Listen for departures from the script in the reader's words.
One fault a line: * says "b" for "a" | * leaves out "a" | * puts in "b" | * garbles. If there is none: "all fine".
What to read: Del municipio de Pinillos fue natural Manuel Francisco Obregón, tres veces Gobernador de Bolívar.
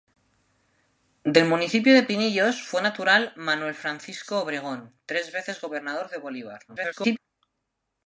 * garbles